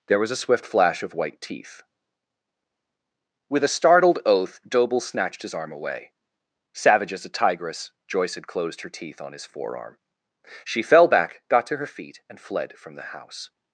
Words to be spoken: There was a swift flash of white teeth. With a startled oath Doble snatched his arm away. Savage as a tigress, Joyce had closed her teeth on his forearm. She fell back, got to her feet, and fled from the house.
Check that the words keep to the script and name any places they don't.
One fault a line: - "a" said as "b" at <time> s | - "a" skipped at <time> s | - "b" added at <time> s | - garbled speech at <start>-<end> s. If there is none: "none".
none